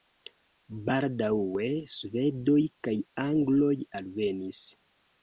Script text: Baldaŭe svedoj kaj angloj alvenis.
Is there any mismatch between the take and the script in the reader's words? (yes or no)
no